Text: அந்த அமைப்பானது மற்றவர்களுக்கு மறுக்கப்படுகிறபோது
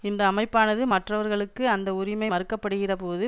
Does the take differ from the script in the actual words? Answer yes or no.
yes